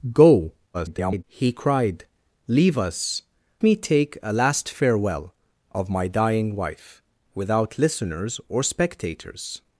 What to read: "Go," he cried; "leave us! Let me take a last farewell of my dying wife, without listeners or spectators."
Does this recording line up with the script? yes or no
no